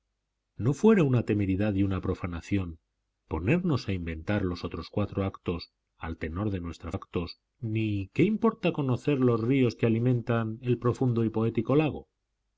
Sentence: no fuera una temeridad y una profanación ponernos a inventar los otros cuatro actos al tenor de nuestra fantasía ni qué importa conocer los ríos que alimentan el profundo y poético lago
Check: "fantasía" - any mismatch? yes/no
yes